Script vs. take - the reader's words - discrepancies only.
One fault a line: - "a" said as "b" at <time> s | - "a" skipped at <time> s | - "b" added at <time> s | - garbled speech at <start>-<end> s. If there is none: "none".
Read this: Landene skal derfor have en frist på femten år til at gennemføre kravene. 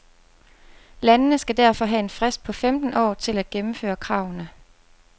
none